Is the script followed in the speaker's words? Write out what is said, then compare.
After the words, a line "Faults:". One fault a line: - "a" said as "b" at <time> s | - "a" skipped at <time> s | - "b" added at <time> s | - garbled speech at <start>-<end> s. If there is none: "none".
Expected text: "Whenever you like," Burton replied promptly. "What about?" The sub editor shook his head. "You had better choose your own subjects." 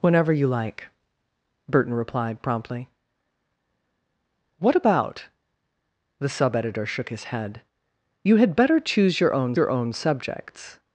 "Whenever you like," Burton replied promptly. "What about?" The sub editor shook his head. "You had better choose your own your own subjects."
Faults:
- "your own" added at 9.5 s